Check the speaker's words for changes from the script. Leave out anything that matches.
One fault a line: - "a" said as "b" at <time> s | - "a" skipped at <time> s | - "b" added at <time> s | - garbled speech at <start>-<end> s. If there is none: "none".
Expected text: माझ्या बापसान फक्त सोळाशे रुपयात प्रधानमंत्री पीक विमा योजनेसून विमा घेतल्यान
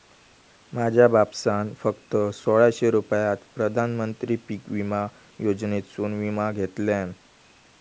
none